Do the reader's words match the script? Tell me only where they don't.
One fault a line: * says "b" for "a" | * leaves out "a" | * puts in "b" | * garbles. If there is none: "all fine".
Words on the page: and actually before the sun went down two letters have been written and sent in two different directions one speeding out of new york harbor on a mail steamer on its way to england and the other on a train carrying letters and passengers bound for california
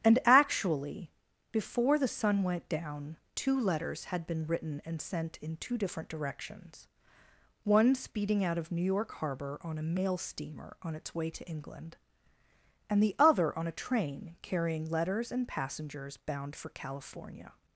* says "had" for "have"